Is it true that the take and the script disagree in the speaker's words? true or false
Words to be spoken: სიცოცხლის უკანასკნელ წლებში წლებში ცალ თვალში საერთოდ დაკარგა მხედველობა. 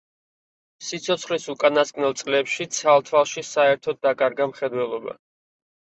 true